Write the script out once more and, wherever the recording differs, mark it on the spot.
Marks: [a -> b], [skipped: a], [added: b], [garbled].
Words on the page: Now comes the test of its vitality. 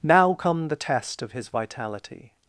Now [comes -> come] the test of [its -> his] vitality.